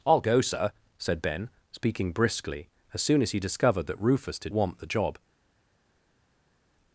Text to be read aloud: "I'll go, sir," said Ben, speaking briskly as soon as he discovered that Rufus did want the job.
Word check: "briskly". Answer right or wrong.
right